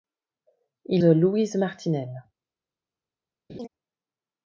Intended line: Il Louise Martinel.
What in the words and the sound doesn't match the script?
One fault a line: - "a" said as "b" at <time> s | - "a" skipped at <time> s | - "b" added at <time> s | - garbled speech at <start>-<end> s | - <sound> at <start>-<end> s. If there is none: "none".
- laugh at 3.5-3.7 s